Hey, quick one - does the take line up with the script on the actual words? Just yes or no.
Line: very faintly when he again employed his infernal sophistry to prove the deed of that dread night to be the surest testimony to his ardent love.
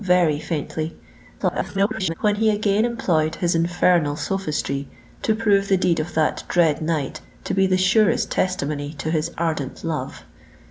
no